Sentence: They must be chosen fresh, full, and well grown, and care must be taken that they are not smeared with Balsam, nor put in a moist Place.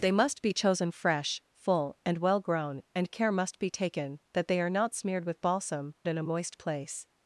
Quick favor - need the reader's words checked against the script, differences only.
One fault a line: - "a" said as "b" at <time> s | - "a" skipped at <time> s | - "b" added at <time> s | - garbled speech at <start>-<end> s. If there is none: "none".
- "nor put" skipped at 5.9 s